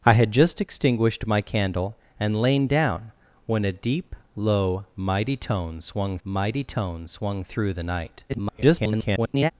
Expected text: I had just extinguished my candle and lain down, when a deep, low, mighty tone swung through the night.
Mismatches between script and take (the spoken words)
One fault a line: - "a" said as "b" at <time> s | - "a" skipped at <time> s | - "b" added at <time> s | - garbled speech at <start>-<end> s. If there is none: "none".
- "mighty tone swung" added at 6.2 s
- garbled speech at 8.3-9.5 s